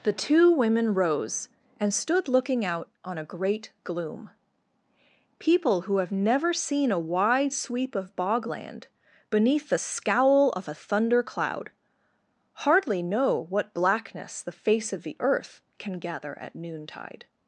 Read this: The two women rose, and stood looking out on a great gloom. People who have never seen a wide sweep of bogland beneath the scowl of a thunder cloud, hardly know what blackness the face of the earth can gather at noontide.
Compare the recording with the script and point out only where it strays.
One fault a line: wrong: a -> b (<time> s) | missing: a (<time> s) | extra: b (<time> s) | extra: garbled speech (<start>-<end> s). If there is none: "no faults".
no faults